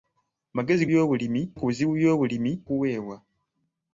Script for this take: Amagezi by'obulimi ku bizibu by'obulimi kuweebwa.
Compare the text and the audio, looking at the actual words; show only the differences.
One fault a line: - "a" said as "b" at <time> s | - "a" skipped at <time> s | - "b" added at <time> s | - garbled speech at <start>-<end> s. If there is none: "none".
none